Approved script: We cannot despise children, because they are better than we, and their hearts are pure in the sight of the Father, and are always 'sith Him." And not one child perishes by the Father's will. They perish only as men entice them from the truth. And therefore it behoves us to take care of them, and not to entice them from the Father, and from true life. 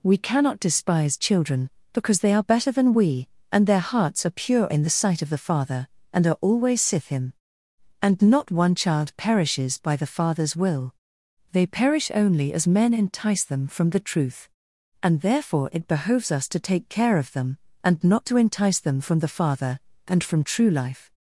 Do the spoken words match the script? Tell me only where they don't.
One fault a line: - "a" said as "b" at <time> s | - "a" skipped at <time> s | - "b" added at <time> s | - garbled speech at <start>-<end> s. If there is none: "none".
none